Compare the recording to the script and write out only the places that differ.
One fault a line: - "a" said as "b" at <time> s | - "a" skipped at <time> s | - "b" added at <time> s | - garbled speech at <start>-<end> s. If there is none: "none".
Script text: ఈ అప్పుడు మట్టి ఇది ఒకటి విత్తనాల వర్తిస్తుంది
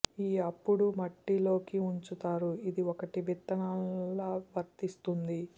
- "లోకి ఉంచుతారు" added at 1.4 s